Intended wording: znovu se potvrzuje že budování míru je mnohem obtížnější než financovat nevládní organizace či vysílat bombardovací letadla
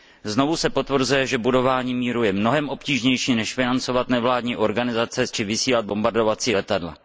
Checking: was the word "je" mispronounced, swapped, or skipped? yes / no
no